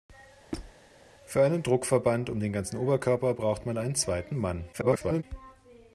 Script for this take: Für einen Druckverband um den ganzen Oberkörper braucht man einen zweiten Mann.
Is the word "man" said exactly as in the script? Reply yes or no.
yes